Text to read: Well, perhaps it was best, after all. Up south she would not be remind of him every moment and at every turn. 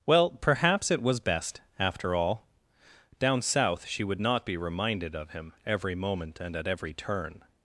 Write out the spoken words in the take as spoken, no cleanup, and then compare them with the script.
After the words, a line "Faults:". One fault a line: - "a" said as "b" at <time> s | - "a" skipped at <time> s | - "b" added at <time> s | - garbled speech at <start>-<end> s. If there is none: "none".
Well, perhaps it was best, after all. Down south she would not be reminded of him every moment and at every turn.
Faults:
- "Up" said as "Down" at 3.2 s
- "remind" said as "reminded" at 4.6 s